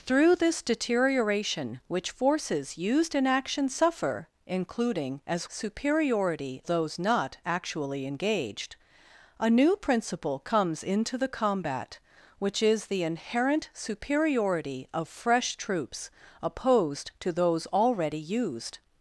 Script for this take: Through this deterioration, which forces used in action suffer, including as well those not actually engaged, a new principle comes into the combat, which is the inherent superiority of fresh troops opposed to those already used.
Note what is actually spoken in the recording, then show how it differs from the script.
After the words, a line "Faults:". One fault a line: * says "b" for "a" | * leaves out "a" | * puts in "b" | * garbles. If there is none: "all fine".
Through this deterioration, which forces used in action suffer, including as superiority those not actually engaged, a new principle comes into the combat, which is the inherent superiority of fresh troops opposed to those already used.
Faults:
* says "superiority" for "well"